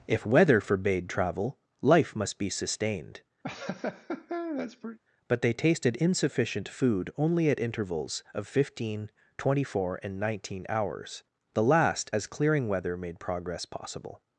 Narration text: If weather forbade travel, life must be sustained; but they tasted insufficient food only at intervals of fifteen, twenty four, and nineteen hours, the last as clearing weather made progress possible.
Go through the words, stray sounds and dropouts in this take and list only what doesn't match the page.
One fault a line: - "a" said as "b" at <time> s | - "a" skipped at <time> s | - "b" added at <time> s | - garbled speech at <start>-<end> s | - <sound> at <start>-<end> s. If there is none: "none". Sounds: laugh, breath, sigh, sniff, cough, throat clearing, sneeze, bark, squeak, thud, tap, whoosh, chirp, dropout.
- laugh at 3.4-5.0 s